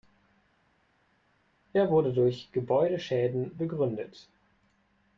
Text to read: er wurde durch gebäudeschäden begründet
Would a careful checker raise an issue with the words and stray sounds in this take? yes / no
no